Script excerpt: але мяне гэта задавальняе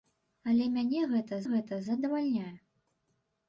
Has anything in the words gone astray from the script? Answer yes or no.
yes